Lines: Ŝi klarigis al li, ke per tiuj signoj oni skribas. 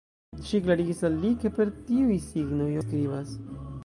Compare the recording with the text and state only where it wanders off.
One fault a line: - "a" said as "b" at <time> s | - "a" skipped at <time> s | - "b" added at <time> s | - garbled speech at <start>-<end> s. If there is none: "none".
- "oni" skipped at 2.7 s